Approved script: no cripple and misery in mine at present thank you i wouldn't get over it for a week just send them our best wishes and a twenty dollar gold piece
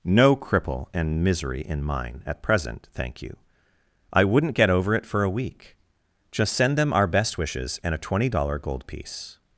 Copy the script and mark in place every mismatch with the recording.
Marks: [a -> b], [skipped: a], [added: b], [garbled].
no cripple and misery in mine at present thank you i wouldn't get over it for a week just send them our best wishes and a twenty dollar gold piece